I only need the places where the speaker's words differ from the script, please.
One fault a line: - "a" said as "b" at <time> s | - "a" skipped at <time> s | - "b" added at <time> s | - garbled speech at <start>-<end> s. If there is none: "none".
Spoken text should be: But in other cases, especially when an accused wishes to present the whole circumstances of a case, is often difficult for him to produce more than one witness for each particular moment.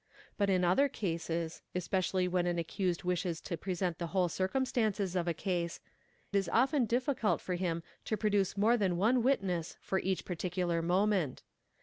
none